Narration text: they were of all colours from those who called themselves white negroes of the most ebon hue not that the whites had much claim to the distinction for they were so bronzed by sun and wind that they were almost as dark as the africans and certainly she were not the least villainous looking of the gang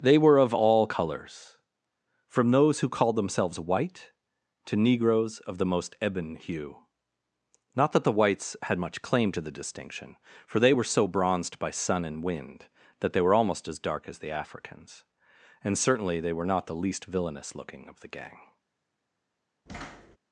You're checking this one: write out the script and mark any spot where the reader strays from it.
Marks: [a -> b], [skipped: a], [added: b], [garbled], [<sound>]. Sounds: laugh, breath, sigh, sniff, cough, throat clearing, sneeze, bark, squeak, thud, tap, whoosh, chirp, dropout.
they were of all colours from those who called themselves white [added: to] negroes of the most ebon hue not that the whites had much claim to the distinction for they were so bronzed by sun and wind that they were almost as dark as the africans and certainly [she -> they] were not the least villainous looking of the gang [thud]